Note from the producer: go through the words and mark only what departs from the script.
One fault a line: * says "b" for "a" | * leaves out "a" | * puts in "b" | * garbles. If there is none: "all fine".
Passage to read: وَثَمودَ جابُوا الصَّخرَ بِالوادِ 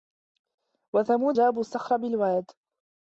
all fine